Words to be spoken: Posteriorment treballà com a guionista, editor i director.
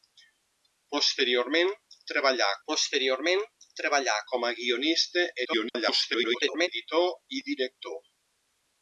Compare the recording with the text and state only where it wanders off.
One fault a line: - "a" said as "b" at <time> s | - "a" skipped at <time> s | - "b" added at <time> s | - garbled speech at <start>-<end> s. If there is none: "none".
- "posteriorment treballà" added at 2.7 s
- garbled speech at 5.4-6.7 s